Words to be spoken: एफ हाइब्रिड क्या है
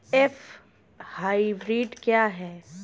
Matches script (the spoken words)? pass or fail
pass